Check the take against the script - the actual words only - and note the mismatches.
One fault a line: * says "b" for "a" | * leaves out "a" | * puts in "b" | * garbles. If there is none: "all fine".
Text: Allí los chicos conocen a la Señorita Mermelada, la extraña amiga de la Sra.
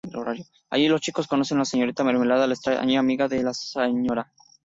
all fine